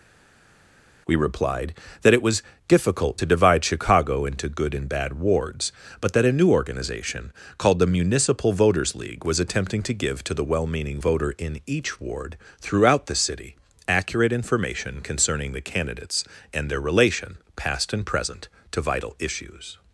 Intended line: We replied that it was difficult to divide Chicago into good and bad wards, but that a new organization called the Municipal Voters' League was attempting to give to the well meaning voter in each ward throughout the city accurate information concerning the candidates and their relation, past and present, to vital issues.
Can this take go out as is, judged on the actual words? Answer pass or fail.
pass